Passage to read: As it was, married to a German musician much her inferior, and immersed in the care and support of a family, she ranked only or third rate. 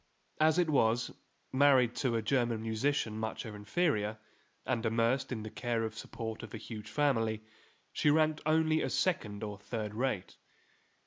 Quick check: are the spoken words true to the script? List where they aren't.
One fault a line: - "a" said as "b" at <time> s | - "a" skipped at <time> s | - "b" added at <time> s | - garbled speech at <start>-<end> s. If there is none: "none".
- "huge" added at 6.6 s
- "as second" added at 8.8 s